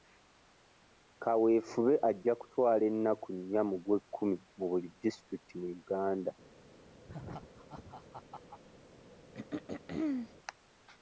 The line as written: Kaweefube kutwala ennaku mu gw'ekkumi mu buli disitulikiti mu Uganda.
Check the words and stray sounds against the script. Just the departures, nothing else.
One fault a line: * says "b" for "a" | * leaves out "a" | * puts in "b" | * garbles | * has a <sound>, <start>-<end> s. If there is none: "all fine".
* puts in "ajja"
* puts in "nnya"
* has a laugh, 7.1-8.6 s
* has a throat clearing, 9.3-10.3 s